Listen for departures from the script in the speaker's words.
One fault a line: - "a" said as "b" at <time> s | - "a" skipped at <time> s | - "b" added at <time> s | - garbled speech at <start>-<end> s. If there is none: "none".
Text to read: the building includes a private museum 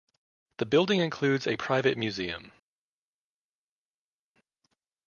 none